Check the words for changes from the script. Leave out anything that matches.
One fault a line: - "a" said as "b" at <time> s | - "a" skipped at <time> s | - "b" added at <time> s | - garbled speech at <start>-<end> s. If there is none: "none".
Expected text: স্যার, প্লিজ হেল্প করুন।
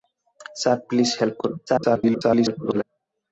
- garbled speech at 1.7-2.8 s